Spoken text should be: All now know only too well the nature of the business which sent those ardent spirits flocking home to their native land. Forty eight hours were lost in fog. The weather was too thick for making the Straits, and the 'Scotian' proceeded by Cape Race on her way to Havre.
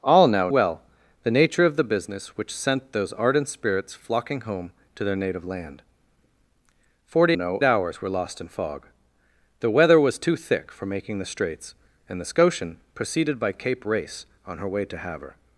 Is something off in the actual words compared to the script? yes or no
yes